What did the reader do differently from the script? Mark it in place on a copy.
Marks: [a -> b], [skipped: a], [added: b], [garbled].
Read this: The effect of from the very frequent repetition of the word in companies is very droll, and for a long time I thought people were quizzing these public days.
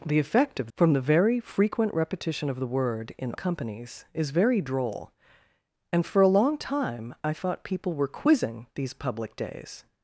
The effect of from the very frequent repetition of the word in companies is very droll, and for a long time I thought people were quizzing these public days.